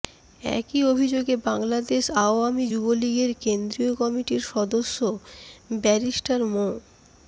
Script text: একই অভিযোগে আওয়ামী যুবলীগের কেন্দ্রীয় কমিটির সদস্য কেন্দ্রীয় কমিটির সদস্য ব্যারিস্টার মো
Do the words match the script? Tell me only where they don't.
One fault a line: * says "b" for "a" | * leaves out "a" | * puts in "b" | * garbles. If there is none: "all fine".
* puts in "বাংলাদেশ"
* leaves out "কেন্দ্রীয় কমিটির সদস্য"